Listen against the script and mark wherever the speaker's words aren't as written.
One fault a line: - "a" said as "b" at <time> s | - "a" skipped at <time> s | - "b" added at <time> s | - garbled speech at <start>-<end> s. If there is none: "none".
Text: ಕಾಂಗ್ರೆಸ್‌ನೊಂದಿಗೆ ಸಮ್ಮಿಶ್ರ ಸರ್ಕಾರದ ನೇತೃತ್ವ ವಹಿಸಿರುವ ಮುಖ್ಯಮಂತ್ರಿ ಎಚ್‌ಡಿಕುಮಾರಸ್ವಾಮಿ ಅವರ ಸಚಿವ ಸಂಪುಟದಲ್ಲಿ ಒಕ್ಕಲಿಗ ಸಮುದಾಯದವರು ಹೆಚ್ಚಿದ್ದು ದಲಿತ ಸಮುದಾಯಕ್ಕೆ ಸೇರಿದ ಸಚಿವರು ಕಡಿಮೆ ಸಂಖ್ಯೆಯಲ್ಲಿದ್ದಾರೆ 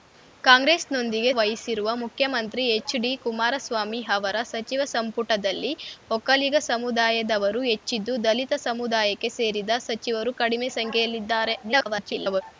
- "ಸಮ್ಮಿಶ್ರ ಸರ್ಕಾರದ ನೇತೃತ್ವ" skipped at 1.3 s
- garbled speech at 11.6-12.4 s